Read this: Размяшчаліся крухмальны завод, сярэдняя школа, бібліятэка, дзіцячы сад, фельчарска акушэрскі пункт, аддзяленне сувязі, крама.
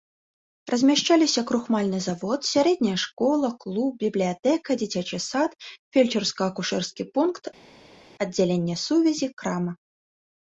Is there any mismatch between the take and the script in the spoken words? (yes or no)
yes